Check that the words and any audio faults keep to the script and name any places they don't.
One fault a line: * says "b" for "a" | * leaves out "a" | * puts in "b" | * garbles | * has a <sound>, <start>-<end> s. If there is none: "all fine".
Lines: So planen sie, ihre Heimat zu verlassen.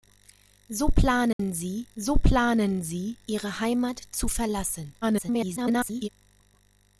* has a dropout, 1.3-1.4 s
* puts in "so planen sie"
* garbles